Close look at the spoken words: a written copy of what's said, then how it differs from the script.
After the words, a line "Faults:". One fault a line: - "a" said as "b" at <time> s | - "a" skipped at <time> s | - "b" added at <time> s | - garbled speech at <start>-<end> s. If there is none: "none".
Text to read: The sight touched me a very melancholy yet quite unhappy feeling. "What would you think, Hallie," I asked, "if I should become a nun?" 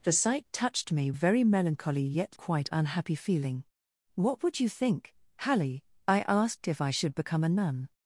The sight touched me a very melancholy yet quite unhappy feeling. "What would you think, Hallie," I asked, "if I should become a nun?"
Faults:
none